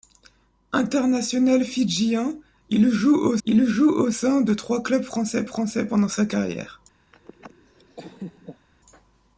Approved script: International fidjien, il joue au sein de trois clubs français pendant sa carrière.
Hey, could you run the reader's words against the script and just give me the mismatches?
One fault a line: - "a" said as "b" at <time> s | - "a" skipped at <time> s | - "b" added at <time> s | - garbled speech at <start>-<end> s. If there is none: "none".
- "il joue au" added at 3.5 s
- "français" added at 5.4 s